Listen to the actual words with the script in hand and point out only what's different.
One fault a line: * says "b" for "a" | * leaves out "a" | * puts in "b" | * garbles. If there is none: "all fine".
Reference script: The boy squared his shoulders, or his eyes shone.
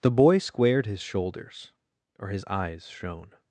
all fine